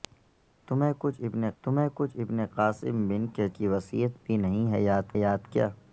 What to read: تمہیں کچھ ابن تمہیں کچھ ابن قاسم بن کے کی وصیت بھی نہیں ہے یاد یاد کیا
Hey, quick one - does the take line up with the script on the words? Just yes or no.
yes